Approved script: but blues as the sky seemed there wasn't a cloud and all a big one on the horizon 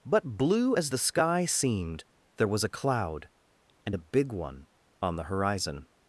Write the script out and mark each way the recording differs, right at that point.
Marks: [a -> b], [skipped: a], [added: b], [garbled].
but [blues -> blue] as the sky seemed there [wasn't -> was] a cloud and [skipped: all] a big one on the horizon